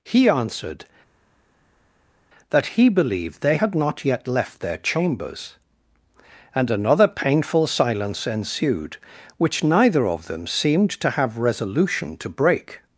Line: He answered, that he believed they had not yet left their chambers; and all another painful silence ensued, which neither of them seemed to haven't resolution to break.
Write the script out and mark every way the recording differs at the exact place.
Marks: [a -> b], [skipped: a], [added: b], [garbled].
He answered, that he believed they had not yet left their chambers; and [skipped: all] another painful silence ensued, which neither of them seemed to [haven't -> have] resolution to break.